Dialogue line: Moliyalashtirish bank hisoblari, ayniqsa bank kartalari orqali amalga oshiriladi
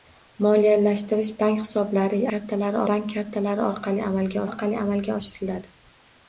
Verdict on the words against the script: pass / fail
fail